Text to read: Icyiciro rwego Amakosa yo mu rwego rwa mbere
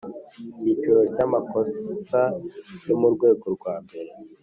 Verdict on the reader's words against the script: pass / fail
fail